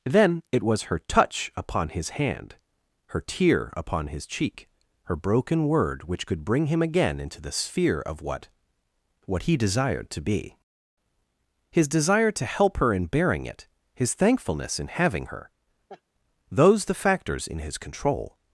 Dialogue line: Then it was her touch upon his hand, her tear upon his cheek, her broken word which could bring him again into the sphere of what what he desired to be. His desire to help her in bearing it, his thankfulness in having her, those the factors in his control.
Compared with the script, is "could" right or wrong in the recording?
right